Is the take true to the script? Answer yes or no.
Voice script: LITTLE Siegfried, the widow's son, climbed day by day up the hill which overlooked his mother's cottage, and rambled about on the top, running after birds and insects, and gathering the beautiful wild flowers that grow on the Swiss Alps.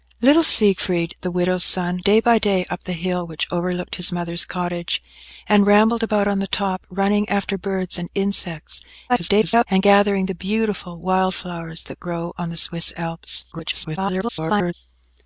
no